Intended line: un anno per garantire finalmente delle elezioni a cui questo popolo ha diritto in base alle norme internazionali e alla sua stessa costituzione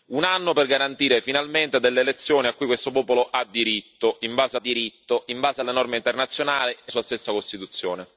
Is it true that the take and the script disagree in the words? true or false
true